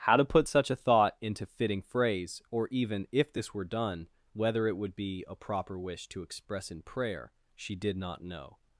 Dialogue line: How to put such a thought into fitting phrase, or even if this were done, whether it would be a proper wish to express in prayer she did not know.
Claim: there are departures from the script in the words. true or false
false